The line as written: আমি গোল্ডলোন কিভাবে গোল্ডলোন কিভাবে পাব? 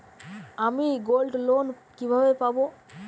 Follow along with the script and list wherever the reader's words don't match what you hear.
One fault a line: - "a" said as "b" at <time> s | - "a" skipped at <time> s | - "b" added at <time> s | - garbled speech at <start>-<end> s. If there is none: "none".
- "গোল্ডলোন কিভাবে" skipped at 2.3 s